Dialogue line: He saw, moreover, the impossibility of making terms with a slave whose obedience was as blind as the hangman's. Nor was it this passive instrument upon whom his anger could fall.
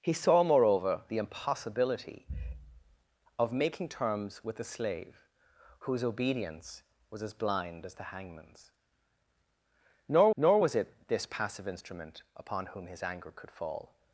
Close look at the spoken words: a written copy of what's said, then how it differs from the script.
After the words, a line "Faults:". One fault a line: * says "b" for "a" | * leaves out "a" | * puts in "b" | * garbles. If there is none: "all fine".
He saw, moreover, the impossibility of making terms with a slave whose obedience was as blind as the hangman's. Nor nor was it this passive instrument upon whom his anger could fall.
Faults:
* puts in "nor"